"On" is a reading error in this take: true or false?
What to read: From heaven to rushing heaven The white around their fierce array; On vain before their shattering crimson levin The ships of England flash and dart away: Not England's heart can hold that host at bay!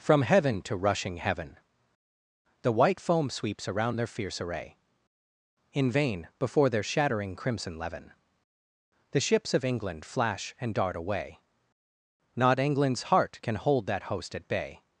true